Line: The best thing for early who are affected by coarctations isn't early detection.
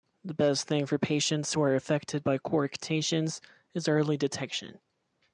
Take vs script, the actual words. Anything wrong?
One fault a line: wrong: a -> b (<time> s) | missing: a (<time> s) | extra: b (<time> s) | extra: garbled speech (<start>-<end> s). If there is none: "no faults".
wrong: early -> patients (1.0 s)
wrong: isn't -> is (3.7 s)